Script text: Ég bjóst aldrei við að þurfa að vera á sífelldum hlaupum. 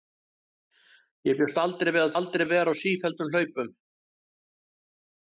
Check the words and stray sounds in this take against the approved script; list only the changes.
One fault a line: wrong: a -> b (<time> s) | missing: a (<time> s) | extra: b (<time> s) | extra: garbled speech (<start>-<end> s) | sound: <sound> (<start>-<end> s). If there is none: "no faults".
wrong: þurfa -> aldrei (2.2 s)